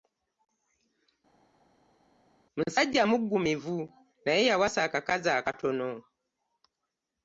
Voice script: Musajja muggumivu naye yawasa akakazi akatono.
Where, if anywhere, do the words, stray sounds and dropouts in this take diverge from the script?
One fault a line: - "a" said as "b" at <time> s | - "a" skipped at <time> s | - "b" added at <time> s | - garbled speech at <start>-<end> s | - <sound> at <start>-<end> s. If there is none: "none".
none